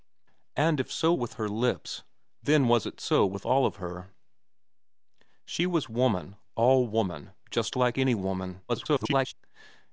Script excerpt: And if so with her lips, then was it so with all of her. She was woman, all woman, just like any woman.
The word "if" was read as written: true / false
true